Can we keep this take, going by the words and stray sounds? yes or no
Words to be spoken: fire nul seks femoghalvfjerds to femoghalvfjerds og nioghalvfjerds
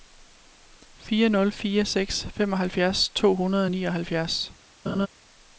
no